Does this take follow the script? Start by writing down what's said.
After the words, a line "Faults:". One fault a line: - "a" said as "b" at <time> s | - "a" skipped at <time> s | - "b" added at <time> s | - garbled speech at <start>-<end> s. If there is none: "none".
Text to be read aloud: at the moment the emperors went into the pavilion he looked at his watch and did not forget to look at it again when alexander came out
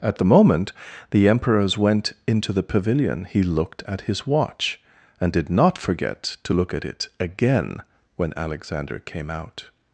at the moment the emperors went into the pavilion he looked at his watch and did not forget to look at it again when alexander came out
Faults:
none